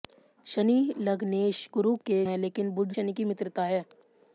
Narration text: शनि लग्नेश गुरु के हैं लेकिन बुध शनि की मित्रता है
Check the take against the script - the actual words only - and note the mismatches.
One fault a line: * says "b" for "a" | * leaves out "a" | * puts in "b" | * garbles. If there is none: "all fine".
all fine